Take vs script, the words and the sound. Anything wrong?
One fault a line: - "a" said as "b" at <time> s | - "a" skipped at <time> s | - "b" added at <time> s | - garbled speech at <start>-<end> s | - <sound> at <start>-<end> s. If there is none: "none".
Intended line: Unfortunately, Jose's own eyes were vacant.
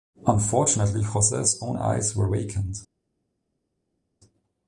none